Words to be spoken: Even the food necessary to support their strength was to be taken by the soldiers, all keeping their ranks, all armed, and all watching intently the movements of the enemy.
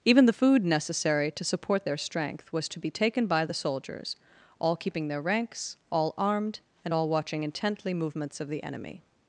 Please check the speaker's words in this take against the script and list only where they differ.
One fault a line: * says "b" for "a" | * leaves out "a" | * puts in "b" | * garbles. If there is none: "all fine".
* leaves out "the"